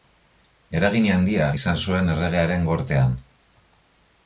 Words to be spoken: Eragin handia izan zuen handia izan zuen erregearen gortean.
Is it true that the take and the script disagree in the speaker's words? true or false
true